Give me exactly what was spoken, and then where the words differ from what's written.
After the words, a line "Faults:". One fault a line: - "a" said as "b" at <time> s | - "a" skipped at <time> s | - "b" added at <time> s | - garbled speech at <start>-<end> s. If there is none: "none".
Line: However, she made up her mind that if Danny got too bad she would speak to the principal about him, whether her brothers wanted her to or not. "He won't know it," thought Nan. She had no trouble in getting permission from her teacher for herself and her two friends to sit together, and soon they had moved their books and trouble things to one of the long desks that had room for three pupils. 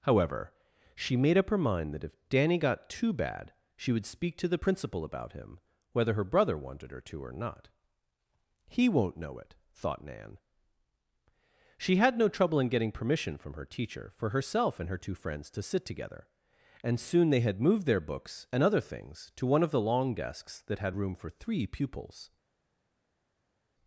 However, she made up her mind that if Danny got too bad she would speak to the principal about him, whether her brother wanted her to or not. "He won't know it," thought Nan. She had no trouble in getting permission from her teacher for herself and her two friends to sit together, and soon they had moved their books and other things to one of the long desks that had room for three pupils.
Faults:
- "brothers" said as "brother" at 6.2 s
- "trouble" said as "other" at 18.6 s